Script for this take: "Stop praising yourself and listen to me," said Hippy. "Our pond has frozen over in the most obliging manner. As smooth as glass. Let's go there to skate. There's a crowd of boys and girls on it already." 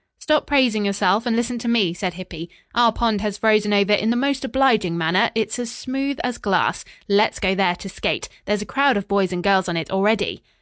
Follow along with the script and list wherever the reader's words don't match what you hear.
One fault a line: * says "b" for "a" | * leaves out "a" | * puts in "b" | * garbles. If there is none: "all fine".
* puts in "It's"